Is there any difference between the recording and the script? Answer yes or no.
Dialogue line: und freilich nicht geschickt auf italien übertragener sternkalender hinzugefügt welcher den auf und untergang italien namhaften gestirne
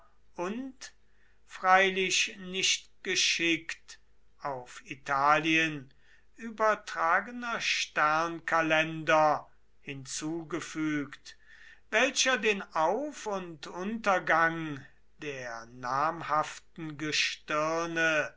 yes